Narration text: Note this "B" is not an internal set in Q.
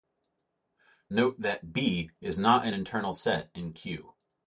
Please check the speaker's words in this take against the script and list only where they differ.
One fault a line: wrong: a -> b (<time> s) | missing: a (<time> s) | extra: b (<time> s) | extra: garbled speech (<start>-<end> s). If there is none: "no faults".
wrong: this -> that (1.4 s)